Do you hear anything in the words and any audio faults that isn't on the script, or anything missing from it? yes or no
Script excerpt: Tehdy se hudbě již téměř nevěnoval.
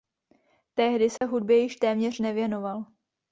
yes